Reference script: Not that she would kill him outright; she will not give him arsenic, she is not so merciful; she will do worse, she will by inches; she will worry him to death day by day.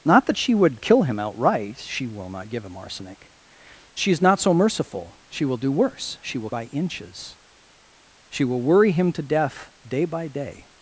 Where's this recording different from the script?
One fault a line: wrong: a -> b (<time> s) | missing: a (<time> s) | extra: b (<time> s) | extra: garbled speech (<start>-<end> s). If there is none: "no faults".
no faults